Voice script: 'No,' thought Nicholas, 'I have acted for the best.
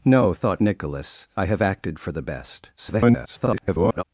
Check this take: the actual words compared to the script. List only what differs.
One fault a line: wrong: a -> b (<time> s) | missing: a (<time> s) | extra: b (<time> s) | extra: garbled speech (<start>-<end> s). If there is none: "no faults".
extra: garbled speech (2.8-4.0 s)